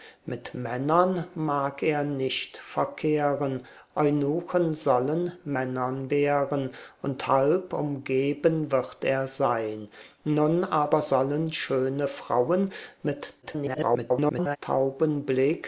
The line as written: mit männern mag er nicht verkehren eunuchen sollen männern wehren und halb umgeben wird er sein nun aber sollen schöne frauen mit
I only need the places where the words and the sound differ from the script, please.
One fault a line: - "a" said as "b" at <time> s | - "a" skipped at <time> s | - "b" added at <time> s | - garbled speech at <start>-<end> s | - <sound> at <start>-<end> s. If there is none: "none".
- garbled speech at 13.4-14.6 s